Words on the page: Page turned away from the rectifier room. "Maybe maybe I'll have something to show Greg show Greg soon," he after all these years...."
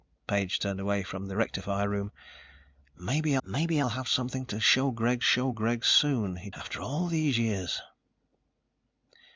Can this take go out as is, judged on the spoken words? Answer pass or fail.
pass